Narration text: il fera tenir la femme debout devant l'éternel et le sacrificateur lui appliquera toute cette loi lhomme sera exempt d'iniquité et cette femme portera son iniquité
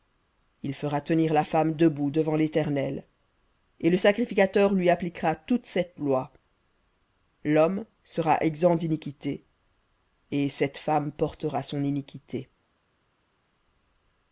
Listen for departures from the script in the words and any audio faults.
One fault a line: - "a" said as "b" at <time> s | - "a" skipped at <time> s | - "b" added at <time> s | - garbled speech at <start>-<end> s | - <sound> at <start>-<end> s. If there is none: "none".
none